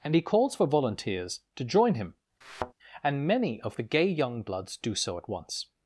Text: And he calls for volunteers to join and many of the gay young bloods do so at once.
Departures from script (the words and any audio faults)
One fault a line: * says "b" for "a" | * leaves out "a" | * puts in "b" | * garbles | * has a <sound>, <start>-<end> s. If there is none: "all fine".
* puts in "him"
* has a thud, 2.4-2.7 s